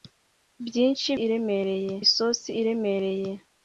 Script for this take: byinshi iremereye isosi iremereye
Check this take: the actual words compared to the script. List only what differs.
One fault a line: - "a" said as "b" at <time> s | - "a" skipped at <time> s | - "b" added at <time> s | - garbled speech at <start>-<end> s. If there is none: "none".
none